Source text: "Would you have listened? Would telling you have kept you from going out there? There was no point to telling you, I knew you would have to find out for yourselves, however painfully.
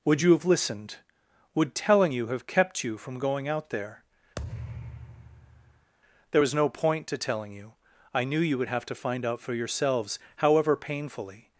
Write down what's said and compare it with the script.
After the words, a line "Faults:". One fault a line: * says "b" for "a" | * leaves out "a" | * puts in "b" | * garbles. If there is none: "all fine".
"Would you have listened? Would telling you have kept you from going out there? There was no point to telling you, I knew you would have to find out for yourselves, however painfully.
Faults:
all fine